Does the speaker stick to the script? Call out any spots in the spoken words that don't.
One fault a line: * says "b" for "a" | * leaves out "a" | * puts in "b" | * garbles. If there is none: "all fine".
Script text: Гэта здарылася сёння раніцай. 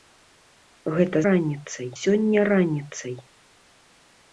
* says "раніцай" for "здарылася"